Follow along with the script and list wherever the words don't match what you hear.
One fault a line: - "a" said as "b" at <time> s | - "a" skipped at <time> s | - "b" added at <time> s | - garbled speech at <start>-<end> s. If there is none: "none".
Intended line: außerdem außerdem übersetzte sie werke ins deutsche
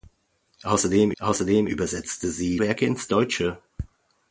none